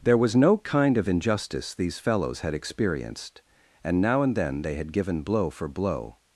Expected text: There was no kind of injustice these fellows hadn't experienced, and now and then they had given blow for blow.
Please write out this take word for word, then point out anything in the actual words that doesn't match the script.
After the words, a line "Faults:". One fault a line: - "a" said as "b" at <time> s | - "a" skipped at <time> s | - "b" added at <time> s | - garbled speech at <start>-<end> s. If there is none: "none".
There was no kind of injustice these fellows had experienced, and now and then they had given blow for blow.
Faults:
- "hadn't" said as "had" at 2.4 s